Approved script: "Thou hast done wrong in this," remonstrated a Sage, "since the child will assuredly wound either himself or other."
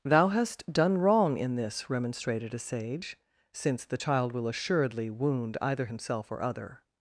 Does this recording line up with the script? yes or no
yes